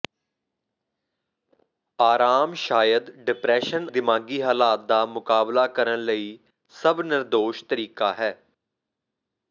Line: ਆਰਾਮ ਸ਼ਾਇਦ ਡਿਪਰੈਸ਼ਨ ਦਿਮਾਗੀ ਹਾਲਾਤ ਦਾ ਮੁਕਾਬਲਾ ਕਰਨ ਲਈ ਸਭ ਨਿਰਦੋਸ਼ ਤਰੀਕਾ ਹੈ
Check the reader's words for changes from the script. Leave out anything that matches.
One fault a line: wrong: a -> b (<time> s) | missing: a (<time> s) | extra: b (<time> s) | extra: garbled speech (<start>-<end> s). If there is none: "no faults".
no faults